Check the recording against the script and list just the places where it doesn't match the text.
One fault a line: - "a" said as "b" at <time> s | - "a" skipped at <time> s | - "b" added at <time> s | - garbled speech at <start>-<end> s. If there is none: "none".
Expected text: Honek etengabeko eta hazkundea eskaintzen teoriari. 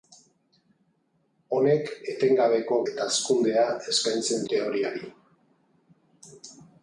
none